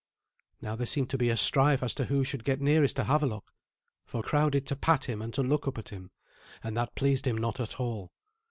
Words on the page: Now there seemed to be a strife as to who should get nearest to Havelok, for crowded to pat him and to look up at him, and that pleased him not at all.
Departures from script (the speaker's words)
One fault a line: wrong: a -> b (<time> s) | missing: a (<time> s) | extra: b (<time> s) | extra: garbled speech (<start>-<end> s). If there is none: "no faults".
no faults